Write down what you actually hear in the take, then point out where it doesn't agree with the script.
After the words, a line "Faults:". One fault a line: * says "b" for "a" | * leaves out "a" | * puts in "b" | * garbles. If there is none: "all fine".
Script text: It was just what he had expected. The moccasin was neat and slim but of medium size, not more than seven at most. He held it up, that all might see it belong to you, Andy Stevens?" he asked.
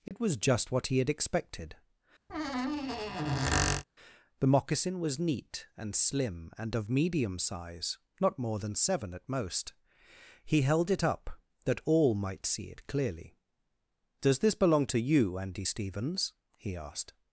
It was just what he had expected. The moccasin was neat and slim and of medium size, not more than seven at most. He held it up, that all might see it clearly. "Does this belong to you, Andy Stevens?" he asked.
Faults:
* says "and" for "but"
* puts in "clearly Does this"